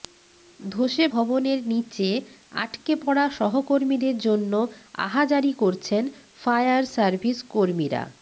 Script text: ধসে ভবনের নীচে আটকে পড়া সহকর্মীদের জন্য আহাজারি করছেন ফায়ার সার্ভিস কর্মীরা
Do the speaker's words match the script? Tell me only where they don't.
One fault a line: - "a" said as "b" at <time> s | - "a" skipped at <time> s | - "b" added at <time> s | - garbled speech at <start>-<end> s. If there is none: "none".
none